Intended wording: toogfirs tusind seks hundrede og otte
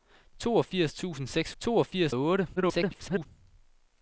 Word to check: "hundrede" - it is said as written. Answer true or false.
false